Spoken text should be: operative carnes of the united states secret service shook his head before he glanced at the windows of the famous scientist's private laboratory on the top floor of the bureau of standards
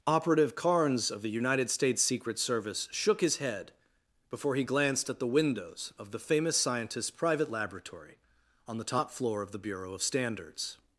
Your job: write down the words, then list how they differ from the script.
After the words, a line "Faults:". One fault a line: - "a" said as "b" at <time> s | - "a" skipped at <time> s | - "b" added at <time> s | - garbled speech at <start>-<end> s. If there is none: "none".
operative carnes of the united states secret service shook his head before he glanced at the windows of the famous scientist's private laboratory on the top floor of the bureau of standards
Faults:
none